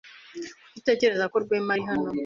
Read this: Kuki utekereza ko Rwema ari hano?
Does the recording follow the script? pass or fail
pass